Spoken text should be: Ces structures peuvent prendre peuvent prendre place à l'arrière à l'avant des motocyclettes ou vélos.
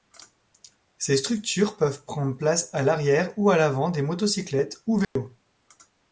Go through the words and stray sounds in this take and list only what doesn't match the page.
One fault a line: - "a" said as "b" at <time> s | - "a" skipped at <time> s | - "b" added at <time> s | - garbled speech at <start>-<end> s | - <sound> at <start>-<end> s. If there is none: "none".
- "peuvent prendre" skipped at 2.4 s
- "ou" added at 3.4 s
- dropout at 5.0-5.2 s